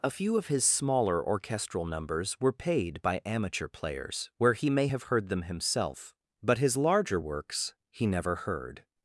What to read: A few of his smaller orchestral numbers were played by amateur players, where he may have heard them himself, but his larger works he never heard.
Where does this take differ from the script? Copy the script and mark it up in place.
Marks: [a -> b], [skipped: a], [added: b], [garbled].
A few of his smaller orchestral numbers were [played -> paid] by amateur players, where he may have heard them himself, but his larger works he never heard.